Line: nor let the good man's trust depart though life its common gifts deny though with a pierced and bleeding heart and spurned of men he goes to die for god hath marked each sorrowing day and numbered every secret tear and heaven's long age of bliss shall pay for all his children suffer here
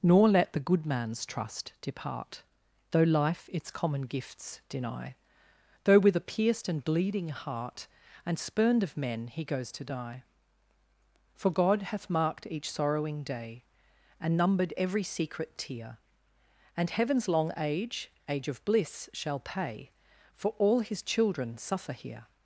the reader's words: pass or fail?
fail